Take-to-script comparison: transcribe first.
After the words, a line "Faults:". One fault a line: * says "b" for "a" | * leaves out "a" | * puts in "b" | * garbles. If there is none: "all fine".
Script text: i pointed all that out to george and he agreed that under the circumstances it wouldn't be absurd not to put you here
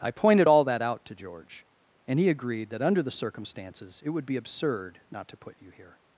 i pointed all that out to george and he agreed that under the circumstances it would be absurd not to put you here
Faults:
* says "would" for "wouldn't"